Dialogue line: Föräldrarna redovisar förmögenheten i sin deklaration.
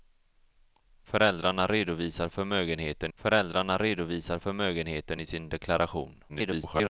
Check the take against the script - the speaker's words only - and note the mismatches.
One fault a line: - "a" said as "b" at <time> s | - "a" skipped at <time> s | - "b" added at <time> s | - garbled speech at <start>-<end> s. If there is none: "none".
- "föräldrarna redovisar förmögenheten" added at 3.1 s
- garbled speech at 6.3-6.9 s